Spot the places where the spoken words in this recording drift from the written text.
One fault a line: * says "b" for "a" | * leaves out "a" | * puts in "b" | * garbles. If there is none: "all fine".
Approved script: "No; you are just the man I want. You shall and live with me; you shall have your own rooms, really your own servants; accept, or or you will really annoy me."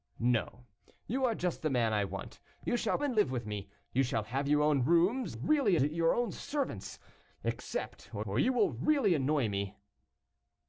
all fine